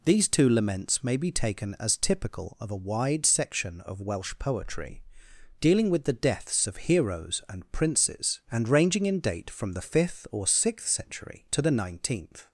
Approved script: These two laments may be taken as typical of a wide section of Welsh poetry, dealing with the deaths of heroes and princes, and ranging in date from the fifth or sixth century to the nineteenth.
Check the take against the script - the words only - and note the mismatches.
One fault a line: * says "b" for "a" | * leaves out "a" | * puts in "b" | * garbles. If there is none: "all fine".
all fine